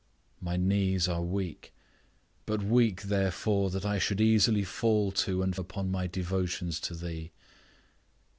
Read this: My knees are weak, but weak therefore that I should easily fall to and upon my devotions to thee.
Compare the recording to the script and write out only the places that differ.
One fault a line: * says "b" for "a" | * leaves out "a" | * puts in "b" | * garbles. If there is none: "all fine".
all fine